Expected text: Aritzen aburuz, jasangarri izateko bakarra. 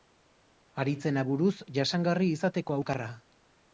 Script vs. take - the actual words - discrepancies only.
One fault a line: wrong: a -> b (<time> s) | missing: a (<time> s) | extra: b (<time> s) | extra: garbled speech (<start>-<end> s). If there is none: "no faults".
no faults